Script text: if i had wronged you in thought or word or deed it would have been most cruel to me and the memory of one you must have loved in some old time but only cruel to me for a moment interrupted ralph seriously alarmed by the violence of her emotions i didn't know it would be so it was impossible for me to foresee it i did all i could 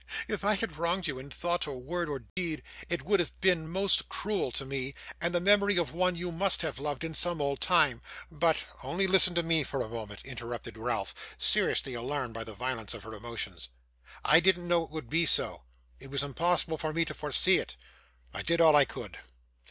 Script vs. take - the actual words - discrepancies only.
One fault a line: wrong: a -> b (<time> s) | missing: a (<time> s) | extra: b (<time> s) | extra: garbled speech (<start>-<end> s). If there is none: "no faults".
wrong: cruel -> listen (9.1 s)